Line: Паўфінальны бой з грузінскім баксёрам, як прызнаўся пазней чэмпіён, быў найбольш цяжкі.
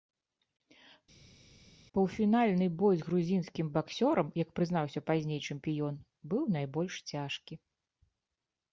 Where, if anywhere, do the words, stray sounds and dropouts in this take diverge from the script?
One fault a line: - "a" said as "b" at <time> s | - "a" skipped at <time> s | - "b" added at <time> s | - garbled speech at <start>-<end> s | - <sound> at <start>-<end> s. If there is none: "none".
none